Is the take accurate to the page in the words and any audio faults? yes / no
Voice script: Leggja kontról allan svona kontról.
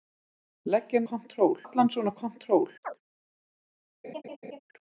no